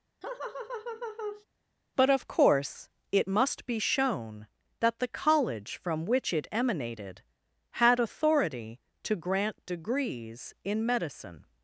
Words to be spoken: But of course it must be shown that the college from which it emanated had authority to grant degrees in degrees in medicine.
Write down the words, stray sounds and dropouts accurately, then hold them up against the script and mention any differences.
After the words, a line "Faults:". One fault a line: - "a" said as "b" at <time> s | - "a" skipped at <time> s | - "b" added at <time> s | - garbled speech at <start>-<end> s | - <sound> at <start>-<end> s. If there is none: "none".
But of course it must be shown that the college from which it emanated had authority to grant degrees in medicine.
Faults:
- laugh at 0.2-1.5 s
- "degrees in" skipped at 10.9 s